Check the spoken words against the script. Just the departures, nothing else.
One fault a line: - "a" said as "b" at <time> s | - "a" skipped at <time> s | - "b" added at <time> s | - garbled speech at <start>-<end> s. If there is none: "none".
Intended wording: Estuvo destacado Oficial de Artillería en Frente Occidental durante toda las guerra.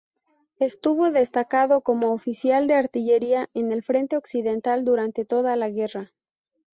- "como" added at 1.8 s
- "el" added at 3.7 s
- "las" said as "la" at 5.5 s